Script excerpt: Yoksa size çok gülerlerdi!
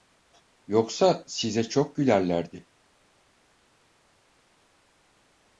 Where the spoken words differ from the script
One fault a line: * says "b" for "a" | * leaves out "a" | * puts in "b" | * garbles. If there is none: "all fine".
all fine